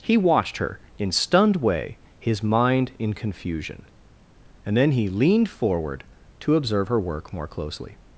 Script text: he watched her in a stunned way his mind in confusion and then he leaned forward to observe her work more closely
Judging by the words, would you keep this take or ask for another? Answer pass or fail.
fail